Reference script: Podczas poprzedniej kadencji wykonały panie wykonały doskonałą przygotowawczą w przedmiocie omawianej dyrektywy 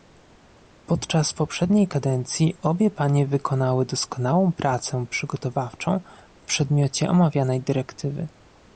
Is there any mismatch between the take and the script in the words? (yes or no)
yes